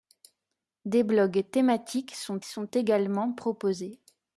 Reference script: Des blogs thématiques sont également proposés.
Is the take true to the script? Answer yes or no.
no